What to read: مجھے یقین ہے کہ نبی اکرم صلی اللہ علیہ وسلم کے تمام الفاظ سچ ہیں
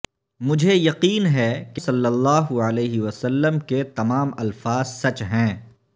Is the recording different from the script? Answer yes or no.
yes